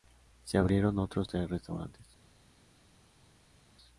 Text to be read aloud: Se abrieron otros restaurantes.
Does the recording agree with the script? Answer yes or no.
no